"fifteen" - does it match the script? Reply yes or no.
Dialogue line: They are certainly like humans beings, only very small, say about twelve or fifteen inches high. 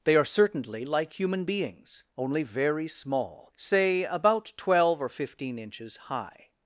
yes